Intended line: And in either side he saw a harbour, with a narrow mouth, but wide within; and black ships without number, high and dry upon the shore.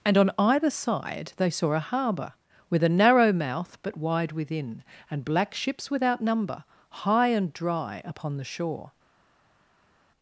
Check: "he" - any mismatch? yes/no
yes